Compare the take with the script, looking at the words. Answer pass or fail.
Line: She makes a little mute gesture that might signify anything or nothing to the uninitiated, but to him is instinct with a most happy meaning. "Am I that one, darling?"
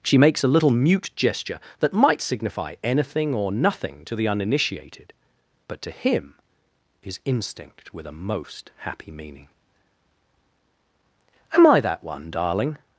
pass